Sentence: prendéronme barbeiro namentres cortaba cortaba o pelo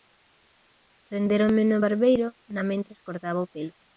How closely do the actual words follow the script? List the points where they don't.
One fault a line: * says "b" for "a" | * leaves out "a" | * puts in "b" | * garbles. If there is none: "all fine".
* puts in "no"
* leaves out "cortaba"